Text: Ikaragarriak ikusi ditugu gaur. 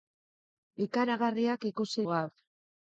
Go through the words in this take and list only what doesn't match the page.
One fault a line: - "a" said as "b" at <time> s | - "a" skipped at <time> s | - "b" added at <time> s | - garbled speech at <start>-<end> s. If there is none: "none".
- "ditugu" skipped at 2.1 s